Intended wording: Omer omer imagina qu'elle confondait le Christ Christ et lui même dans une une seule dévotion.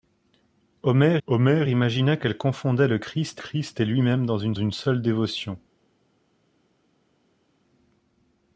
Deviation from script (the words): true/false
false